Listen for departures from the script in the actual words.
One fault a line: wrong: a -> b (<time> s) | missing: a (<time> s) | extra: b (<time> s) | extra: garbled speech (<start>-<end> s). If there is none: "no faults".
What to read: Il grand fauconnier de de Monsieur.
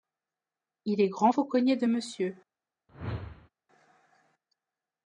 extra: est (1.0 s)
missing: de (1.9 s)